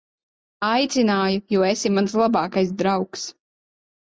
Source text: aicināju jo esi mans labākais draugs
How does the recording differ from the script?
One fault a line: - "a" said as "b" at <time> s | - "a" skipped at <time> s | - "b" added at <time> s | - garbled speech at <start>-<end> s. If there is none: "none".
none